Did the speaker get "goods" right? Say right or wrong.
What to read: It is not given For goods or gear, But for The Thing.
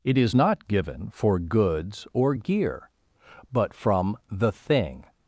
right